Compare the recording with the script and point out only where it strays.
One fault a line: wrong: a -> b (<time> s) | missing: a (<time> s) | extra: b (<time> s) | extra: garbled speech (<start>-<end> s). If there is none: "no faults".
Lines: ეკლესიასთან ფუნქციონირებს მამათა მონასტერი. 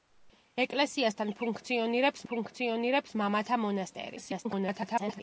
extra: ფუნქციონირებს (2.3 s)
extra: garbled speech (4.2-5.2 s)